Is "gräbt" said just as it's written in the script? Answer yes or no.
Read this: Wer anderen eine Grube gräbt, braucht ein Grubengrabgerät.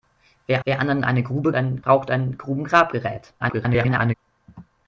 no